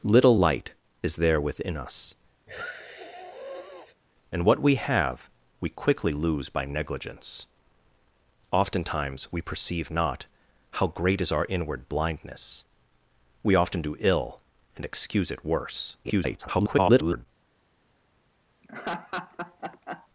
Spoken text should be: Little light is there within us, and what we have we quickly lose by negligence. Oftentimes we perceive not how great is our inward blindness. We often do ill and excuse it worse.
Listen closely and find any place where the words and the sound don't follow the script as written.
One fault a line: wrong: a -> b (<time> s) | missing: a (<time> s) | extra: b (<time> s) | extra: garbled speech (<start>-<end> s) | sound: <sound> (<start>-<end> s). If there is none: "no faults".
sound: sniff (2.5-3.9 s)
extra: garbled speech (16.0-17.3 s)
sound: laugh (18.6-20.1 s)